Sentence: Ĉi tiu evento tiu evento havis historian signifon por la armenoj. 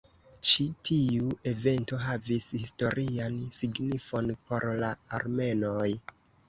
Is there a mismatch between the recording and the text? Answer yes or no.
yes